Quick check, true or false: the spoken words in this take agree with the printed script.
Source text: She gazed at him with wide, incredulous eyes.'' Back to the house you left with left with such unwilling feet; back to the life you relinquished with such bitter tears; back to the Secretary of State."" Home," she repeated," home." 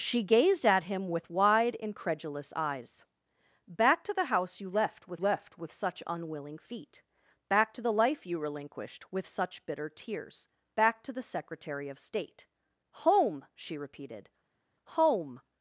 true